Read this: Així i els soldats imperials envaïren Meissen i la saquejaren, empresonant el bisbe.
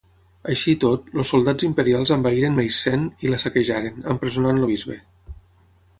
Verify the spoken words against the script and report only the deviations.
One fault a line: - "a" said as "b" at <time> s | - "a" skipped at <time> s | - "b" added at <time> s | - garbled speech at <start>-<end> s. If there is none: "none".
- "tot" added at 0.8 s